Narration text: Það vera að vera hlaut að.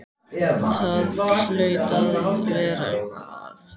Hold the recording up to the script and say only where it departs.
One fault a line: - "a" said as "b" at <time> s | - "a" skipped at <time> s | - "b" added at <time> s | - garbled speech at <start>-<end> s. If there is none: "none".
- "vera" said as "hlaut" at 1.2 s
- "hlaut" said as "eitthvað" at 2.9 s